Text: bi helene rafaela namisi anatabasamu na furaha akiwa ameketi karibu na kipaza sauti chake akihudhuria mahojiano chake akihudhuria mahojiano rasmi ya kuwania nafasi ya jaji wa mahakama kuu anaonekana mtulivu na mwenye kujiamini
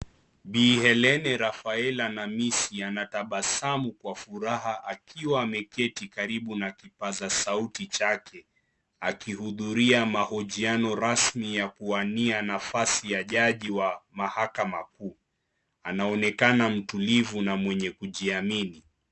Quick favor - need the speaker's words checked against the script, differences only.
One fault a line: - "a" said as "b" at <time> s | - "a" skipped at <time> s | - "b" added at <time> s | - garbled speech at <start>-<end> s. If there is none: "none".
- "na" said as "kwa" at 3.9 s
- "chake akihudhuria mahojiano" skipped at 10.9 s